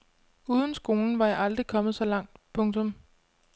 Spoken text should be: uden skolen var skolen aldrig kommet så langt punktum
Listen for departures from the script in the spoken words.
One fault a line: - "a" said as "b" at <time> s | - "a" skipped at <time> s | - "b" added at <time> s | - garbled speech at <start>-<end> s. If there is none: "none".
- "skolen" said as "jeg" at 1.3 s